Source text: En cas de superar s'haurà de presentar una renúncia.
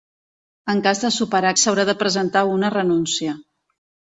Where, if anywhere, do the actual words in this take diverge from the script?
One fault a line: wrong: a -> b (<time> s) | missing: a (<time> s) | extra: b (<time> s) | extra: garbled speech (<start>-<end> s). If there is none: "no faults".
no faults